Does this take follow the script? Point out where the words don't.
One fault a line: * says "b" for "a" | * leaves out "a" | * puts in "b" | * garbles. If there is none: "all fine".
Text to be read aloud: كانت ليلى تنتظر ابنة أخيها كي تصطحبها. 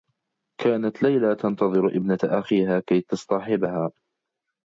all fine